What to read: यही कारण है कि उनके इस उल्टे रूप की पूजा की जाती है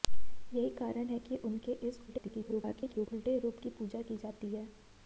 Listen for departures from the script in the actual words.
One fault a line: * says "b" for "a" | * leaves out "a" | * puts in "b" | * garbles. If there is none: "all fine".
* garbles